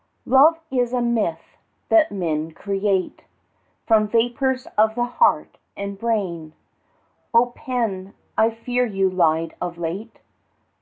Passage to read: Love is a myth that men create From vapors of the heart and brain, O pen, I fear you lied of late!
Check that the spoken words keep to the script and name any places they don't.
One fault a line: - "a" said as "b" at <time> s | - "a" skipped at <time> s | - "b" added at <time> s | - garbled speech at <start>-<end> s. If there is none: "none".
none